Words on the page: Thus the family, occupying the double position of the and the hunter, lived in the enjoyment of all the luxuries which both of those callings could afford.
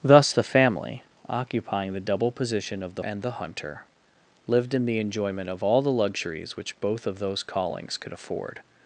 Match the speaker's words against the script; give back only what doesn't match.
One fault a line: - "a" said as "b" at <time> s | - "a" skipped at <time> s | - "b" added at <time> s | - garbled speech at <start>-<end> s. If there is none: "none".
none